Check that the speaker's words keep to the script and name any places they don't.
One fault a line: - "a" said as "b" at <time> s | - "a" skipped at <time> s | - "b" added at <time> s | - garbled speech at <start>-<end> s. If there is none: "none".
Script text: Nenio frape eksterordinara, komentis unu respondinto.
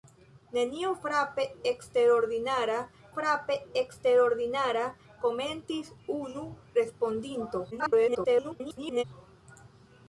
- "frape eksterordinara" added at 3.1 s
- garbled speech at 7.7-9.0 s